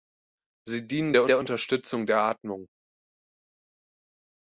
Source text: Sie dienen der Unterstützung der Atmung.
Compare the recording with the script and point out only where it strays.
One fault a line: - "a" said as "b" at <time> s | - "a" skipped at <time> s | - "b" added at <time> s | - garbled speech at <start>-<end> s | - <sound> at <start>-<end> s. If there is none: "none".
- "der" added at 1.3 s